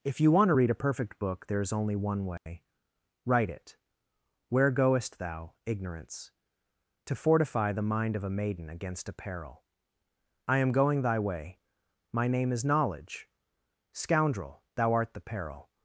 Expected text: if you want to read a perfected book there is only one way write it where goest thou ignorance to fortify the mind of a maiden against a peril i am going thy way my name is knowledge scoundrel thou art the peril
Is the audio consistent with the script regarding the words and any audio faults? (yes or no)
no